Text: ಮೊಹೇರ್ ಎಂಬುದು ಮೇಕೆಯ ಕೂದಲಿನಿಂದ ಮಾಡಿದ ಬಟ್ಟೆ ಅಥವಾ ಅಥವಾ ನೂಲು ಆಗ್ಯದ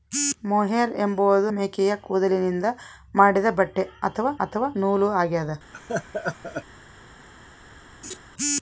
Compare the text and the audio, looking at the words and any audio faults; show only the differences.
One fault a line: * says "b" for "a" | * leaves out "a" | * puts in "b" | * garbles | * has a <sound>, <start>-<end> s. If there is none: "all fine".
* has a laugh, 5.7-6.6 s
* has a laugh, 8.0-8.2 s